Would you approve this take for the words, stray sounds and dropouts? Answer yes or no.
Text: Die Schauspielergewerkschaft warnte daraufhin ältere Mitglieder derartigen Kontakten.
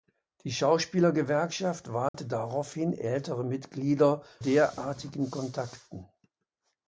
no